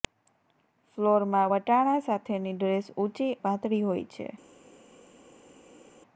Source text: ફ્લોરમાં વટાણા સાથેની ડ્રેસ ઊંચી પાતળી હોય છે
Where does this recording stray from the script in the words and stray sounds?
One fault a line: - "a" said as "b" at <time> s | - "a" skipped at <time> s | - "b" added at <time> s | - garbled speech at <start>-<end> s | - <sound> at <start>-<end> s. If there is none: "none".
none